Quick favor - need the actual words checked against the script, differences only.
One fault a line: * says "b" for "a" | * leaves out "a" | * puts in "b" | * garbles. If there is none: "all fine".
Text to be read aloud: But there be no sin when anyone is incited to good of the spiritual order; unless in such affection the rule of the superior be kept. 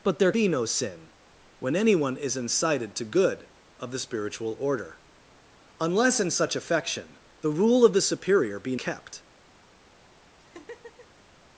all fine